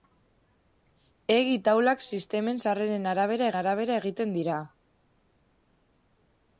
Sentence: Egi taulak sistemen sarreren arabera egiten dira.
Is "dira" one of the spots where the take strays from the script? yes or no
no